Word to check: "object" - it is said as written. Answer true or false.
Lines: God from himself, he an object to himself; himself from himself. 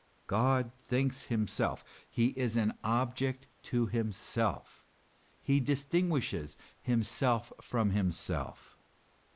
true